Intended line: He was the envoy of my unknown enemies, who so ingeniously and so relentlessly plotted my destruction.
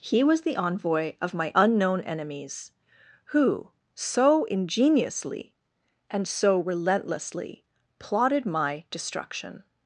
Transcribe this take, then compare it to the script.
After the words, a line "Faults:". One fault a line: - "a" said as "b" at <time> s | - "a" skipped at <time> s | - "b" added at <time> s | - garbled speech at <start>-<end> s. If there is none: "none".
He was the envoy of my unknown enemies, who so ingeniously and so relentlessly plotted my destruction.
Faults:
none